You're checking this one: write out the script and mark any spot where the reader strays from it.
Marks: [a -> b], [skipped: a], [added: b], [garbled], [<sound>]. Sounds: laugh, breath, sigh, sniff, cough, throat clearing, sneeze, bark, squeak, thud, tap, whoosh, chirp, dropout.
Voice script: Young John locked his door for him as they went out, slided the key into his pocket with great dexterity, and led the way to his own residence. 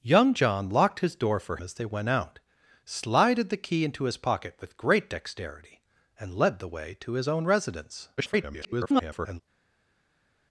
Young John locked his door for [skipped: him] as they went out, slided the key into his pocket with great dexterity, and led the way to his own residence. [garbled]